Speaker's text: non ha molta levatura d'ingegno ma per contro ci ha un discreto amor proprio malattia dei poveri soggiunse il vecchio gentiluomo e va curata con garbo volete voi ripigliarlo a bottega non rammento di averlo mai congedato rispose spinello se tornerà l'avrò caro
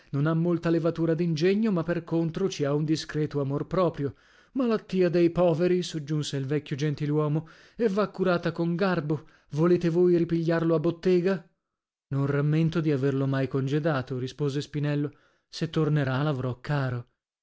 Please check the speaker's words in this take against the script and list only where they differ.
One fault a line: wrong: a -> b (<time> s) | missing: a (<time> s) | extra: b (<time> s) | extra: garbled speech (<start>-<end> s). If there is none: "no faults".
no faults